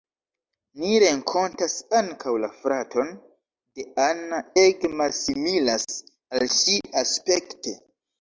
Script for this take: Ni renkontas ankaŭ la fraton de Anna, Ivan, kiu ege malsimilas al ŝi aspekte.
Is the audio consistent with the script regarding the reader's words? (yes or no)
no